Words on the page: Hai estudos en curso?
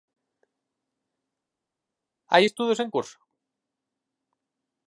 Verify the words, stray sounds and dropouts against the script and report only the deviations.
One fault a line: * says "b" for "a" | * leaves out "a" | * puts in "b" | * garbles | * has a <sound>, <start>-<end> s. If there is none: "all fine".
all fine